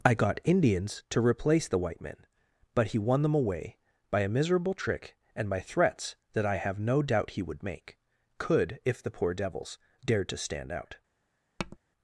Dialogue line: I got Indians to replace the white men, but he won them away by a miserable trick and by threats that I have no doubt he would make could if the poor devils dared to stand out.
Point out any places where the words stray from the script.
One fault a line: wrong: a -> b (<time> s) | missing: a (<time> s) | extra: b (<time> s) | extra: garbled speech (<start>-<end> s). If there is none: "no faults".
no faults